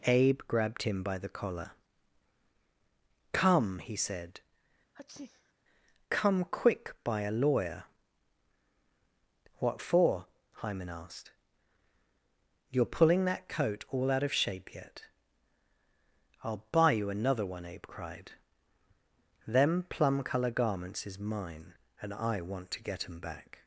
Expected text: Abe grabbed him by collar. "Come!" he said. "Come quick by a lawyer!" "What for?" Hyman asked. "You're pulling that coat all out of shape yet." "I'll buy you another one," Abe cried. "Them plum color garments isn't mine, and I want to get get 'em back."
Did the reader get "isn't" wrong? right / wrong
wrong